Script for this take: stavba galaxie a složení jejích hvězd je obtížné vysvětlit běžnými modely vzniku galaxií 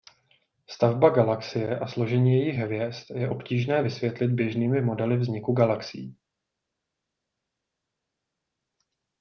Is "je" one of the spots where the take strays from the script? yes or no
no